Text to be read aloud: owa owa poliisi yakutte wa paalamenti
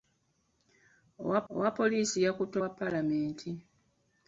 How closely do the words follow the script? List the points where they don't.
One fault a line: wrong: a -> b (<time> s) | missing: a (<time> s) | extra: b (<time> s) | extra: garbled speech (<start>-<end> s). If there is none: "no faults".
no faults